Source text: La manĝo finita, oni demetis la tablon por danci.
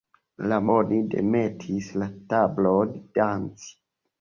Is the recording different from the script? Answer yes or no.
yes